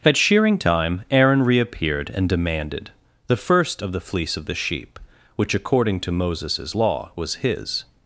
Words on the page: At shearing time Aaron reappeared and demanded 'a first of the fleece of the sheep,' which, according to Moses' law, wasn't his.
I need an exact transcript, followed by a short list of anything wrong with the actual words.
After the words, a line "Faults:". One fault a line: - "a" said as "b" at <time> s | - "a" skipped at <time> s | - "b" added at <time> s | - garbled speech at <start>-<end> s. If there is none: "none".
At shearing time Aaron reappeared and demanded 'the first of the fleece of the sheep,' which, according to Moses' law, was his.
Faults:
- "a" said as "the" at 3.3 s
- "wasn't" said as "was" at 7.2 s